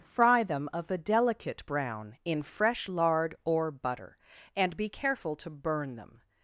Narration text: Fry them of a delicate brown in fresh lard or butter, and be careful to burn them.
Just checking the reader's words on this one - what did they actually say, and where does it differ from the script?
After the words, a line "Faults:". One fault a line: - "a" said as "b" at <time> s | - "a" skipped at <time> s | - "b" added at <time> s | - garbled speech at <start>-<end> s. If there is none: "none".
Fry them of a delicate brown in fresh lard or butter, and be careful to burn them.
Faults:
none